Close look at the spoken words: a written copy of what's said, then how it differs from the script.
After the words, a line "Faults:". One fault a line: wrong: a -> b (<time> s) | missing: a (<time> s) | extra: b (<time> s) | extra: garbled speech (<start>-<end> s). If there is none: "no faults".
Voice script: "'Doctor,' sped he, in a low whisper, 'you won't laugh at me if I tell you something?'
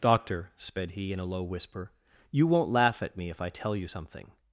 "'Doctor,' sped he, in a low whisper, 'you won't laugh at me if I tell you something?'
Faults:
no faults